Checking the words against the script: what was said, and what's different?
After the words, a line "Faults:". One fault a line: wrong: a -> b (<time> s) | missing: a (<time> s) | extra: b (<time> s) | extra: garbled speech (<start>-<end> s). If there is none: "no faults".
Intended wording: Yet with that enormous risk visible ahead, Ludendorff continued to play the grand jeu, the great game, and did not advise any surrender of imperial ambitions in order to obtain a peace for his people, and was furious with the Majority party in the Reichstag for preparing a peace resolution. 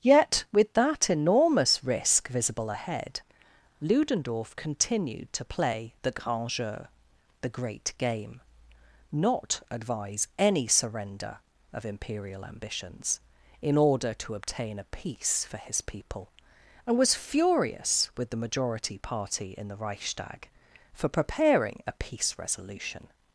Yet with that enormous risk visible ahead, Ludendorff continued to play the grand jeu, the great game, not advise any surrender of imperial ambitions in order to obtain a peace for his people, and was furious with the Majority party in the Reichstag for preparing a peace resolution.
Faults:
missing: and did (8.4 s)